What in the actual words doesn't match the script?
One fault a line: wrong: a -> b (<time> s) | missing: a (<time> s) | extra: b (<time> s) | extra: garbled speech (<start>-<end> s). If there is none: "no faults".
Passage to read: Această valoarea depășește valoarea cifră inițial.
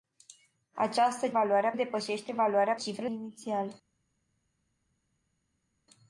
no faults